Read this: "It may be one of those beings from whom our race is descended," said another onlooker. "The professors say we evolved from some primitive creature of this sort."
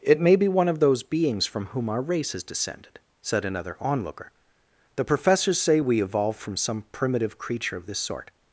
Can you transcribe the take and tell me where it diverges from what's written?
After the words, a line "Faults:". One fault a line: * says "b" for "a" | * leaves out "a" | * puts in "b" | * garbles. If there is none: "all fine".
"It may be one of those beings from whom our race is descended," said another onlooker. "The professors say we evolved from some primitive creature of this sort."
Faults:
all fine